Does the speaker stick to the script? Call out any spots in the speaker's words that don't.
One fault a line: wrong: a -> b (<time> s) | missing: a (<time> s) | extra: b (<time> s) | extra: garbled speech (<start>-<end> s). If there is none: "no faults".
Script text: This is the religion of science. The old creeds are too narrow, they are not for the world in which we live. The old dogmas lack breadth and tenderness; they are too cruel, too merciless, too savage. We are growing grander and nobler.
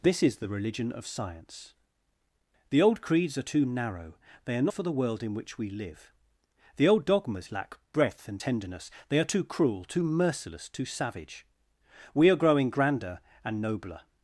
missing: not (4.7 s)